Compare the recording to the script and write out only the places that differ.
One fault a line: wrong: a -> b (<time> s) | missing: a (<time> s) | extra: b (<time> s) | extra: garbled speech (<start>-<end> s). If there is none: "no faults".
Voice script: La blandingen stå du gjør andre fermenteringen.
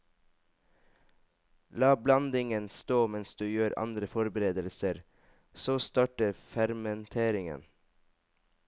extra: mens (3.1 s)
extra: forberedelser så starter (4.0 s)